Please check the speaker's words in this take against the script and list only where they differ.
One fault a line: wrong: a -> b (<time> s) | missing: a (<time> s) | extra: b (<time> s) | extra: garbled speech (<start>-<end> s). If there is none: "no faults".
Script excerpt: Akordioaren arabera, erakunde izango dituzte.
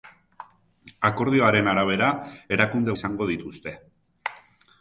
no faults